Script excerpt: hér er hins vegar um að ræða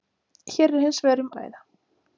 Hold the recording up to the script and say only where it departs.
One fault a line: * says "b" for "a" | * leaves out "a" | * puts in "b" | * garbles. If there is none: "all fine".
all fine